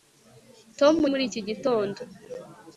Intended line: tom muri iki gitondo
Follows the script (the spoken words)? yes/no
yes